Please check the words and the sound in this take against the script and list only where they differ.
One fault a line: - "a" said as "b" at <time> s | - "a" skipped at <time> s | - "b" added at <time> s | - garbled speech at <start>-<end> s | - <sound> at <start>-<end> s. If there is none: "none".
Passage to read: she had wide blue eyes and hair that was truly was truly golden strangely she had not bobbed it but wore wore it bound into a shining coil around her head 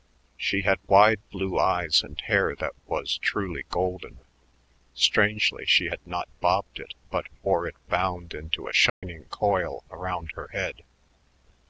- "was truly" skipped at 3.6 s
- "wore" skipped at 7.7 s
- dropout at 8.9-9.0 s